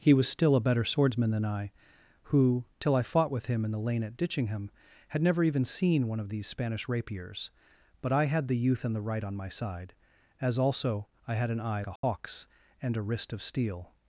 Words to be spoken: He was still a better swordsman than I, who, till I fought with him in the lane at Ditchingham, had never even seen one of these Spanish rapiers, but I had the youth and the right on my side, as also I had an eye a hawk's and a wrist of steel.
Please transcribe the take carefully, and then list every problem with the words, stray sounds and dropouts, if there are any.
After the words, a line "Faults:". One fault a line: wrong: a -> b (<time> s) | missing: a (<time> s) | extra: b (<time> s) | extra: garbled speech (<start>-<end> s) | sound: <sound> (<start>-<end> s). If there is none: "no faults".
He was still a better swordsman than I, who, till I fought with him in the lane at Ditchingham, had never even seen one of these Spanish rapiers, but I had the youth and the right on my side, as also I had an eye a hawk's and a wrist of steel.
Faults:
sound: dropout (12.0-12.0 s)